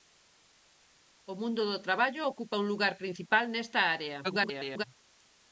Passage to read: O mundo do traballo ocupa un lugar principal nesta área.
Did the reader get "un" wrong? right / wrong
right